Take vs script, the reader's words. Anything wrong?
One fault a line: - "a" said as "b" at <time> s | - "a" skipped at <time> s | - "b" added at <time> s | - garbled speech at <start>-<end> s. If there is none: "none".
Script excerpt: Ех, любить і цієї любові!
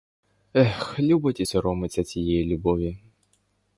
- "соромиться" added at 1.4 s